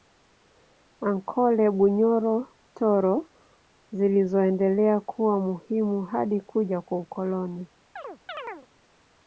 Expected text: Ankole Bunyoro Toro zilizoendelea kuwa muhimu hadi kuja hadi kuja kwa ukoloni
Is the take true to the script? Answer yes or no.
no